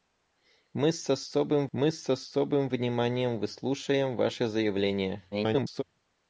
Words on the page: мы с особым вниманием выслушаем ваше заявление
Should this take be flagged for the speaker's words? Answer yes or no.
yes